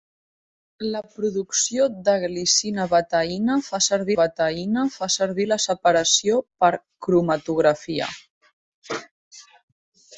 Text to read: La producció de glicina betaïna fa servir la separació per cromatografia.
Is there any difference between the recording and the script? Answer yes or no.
yes